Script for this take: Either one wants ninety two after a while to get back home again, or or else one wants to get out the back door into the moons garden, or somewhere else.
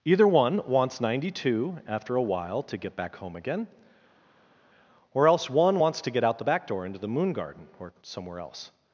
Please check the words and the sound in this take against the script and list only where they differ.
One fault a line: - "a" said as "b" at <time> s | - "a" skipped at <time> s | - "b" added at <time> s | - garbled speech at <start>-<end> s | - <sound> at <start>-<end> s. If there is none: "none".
- "or" skipped at 5.3 s
- "moons" said as "moon" at 7.1 s